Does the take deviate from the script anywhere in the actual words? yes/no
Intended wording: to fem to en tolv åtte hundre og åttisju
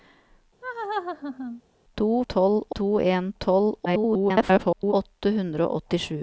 yes